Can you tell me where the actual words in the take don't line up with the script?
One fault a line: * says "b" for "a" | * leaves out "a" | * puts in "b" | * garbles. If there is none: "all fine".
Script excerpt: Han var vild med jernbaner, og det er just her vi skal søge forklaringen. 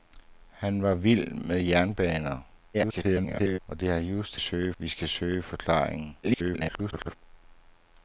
* garbles
* says "søge" for "her"
* garbles